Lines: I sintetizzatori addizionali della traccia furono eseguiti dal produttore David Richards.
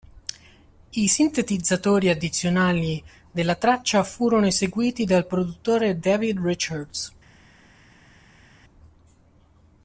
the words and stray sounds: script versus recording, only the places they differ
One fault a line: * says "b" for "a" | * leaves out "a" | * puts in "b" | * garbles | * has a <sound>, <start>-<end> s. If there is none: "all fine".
all fine